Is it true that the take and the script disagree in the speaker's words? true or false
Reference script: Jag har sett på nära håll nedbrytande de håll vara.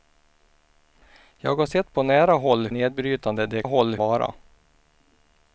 false